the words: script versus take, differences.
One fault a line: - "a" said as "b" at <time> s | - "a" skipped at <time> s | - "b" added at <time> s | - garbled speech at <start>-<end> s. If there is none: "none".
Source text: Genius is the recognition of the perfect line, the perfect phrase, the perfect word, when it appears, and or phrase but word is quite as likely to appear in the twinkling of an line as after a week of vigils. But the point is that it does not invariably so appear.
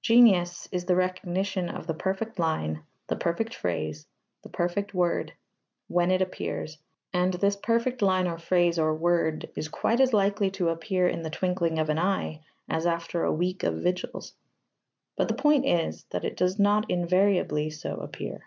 - "this perfect line" added at 7.3 s
- "but" said as "or" at 8.8 s
- "line" said as "eye" at 12.0 s